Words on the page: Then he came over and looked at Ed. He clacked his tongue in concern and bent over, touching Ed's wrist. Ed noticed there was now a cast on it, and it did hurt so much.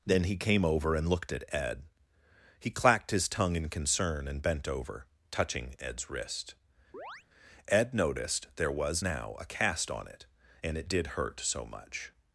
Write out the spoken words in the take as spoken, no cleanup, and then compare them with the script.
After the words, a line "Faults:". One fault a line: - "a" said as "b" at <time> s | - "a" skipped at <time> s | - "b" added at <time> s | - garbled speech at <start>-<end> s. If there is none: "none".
Then he came over and looked at Ed. He clacked his tongue in concern and bent over, touching Ed's wrist. Ed noticed there was now a cast on it, and it did hurt so much.
Faults:
none